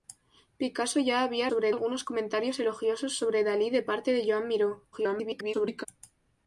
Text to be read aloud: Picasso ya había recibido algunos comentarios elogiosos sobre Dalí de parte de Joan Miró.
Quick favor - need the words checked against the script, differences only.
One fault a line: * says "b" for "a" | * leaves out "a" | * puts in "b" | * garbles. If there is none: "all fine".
* says "sobre" for "recibido"
* garbles